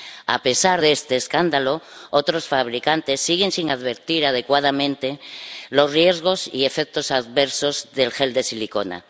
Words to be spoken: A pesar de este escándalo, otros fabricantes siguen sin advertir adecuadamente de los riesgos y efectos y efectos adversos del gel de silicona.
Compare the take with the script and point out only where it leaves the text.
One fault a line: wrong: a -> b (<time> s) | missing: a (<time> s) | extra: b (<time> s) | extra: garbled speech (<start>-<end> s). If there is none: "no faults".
missing: y efectos (7.1 s)